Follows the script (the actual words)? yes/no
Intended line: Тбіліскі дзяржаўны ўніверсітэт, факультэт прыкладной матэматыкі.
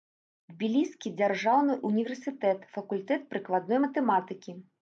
yes